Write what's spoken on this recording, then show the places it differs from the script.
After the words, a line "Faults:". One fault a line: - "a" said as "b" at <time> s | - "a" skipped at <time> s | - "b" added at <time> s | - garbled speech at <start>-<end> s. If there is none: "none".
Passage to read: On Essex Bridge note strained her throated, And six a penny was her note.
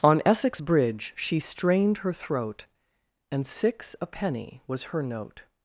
On Essex Bridge she strained her throat, And six a penny was her note.
Faults:
- "note" said as "she" at 1.2 s
- "throated" said as "throat" at 2.1 s